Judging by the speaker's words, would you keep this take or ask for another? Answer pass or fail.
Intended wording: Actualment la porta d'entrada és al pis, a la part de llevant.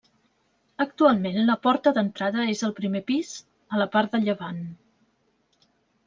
fail